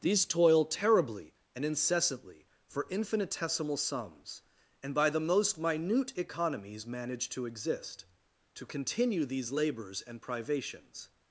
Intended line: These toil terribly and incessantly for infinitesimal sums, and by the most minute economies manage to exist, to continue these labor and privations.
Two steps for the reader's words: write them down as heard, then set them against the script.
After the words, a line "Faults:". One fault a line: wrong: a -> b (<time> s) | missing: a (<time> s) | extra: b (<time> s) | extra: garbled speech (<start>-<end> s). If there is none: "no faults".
These toil terribly and incessantly for infinitesimal sums, and by the most minute economies manage to exist, to continue these labors and privations.
Faults:
wrong: labor -> labors (9.5 s)